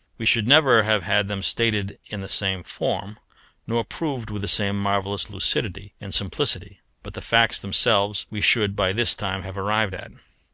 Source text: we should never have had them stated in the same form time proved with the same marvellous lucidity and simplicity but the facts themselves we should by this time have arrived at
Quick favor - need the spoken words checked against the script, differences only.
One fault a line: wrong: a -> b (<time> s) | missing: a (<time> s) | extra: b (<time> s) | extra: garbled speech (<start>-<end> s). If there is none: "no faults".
wrong: time -> nor (3.7 s)